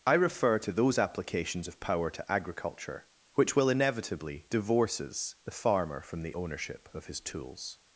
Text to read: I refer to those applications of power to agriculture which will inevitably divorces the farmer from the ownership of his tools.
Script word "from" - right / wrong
right